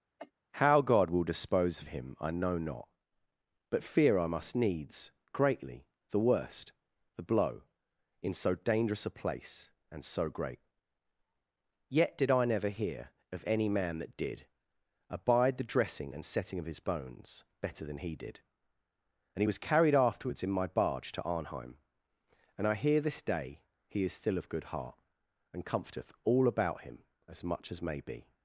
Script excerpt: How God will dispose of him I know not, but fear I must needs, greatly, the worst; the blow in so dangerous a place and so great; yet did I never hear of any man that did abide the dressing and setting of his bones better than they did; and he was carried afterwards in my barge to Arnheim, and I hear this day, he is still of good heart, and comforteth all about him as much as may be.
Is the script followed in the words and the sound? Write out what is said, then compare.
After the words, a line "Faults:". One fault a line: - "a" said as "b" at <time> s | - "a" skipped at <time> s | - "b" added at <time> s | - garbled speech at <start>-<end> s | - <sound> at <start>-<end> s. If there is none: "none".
How God will dispose of him I know not, but fear I must needs, greatly, the worst; the blow in so dangerous a place and so great; yet did I never hear of any man that did abide the dressing and setting of his bones better than he did; and he was carried afterwards in my barge to Arnheim, and I hear this day, he is still of good heart, and comforteth all about him as much as may be.
Faults:
- cough at 0.2-0.3 s
- "they" said as "he" at 18.0 s